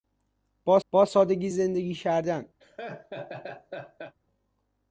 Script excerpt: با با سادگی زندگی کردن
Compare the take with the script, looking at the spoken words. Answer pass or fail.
pass